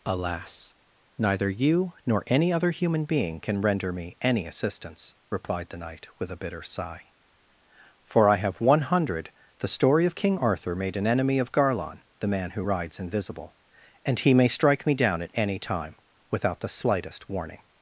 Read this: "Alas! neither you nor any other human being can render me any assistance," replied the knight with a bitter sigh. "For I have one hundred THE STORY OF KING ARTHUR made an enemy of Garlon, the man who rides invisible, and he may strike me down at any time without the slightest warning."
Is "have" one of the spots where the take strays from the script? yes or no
no